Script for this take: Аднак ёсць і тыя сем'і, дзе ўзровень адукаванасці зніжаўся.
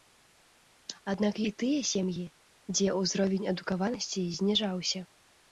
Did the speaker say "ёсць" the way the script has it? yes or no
no